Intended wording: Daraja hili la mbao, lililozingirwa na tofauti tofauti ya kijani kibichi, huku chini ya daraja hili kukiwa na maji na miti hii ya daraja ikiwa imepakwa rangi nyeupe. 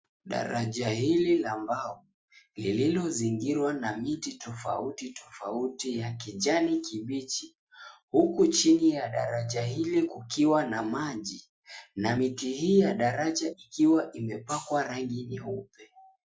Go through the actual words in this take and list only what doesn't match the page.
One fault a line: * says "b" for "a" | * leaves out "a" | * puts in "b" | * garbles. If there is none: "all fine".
* puts in "miti"